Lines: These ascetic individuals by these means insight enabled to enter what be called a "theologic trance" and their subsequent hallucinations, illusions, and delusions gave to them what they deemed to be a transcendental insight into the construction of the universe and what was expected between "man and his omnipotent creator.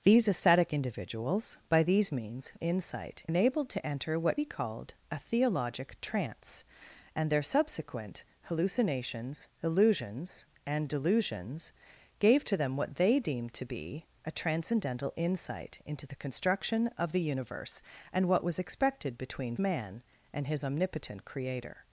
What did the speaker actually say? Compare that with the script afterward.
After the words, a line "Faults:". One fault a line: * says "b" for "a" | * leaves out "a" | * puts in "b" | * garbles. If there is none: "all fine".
These ascetic individuals by these means insight enabled to enter what be called a "theologic trance" and their subsequent hallucinations, illusions, and delusions gave to them what they deemed to be a transcendental insight into the construction of the universe and what was expected between "man and his omnipotent creator.
Faults:
all fine